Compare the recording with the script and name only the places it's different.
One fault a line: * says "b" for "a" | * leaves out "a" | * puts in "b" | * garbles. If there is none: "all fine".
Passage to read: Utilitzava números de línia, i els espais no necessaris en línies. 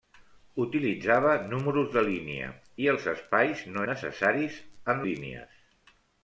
all fine